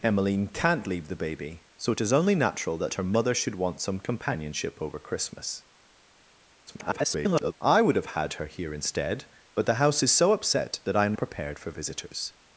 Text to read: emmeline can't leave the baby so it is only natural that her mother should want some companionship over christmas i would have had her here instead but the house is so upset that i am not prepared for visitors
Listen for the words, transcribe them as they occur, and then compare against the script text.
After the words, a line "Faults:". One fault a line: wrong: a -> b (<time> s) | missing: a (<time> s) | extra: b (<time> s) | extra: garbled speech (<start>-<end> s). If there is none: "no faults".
emmeline can't leave the baby so it is only natural that her mother should want some companionship over christmas [garbled] i would have had her here instead but the house is so upset that i am prepared for visitors
Faults:
extra: garbled speech (6.7-7.5 s)
missing: not (11.1 s)